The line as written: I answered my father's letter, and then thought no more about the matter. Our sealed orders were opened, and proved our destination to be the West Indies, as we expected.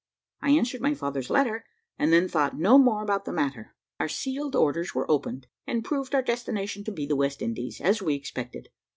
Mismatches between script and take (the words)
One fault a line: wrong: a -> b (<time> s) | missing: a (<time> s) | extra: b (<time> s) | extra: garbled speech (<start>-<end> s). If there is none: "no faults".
no faults